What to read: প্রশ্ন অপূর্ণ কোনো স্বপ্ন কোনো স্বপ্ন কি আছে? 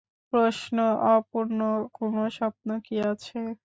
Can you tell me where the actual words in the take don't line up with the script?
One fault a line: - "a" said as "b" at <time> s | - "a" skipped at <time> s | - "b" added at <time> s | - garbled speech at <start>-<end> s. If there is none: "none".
- "কোনো স্বপ্ন" skipped at 2.7 s